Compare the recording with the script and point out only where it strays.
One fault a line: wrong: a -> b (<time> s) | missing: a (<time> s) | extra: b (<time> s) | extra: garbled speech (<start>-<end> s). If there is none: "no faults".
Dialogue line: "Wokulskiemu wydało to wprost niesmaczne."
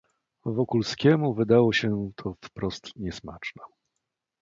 extra: się (1.7 s)